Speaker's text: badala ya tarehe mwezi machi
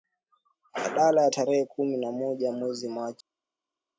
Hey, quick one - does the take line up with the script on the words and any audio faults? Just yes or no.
no